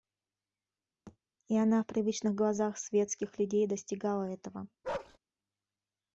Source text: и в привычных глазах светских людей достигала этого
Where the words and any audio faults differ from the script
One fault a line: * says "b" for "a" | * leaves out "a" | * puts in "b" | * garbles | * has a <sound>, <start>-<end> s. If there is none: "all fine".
* has a thud, 1.1-1.2 s
* puts in "она"
* has a bark, 4.8-5.2 s